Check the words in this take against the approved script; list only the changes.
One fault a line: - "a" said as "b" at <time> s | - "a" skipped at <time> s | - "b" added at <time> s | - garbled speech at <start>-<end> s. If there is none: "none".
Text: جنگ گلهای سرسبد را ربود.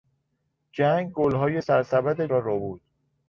none